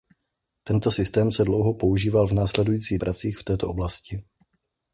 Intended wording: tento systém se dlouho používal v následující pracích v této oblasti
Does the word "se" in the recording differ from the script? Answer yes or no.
no